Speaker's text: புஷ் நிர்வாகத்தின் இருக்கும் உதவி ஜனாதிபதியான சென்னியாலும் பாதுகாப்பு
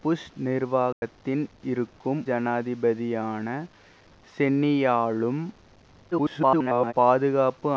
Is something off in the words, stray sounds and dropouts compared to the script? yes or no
yes